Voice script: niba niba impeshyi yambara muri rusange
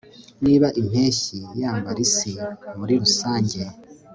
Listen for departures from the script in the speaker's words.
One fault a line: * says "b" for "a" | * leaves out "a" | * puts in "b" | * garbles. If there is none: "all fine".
* leaves out "niba"
* puts in "isi"